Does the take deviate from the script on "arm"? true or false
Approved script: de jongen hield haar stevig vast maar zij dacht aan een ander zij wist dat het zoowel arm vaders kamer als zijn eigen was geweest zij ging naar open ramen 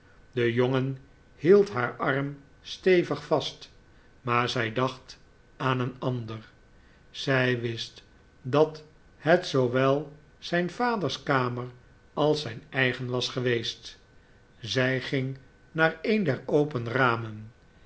true